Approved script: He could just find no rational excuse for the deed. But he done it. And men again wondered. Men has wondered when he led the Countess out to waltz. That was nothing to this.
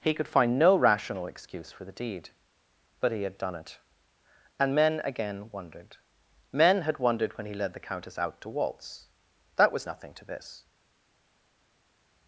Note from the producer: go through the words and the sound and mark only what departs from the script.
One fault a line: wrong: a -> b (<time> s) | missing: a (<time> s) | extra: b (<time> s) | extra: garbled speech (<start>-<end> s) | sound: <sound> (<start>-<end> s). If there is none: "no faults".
missing: just (0.3 s)
extra: had (3.2 s)
wrong: has -> had (6.8 s)